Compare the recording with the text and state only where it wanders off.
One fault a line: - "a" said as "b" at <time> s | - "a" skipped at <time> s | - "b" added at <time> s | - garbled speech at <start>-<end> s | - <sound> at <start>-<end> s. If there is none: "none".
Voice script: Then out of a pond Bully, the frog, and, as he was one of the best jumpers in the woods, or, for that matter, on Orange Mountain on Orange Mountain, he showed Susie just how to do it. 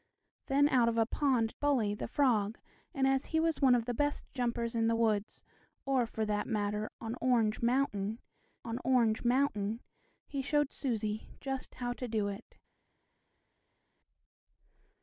none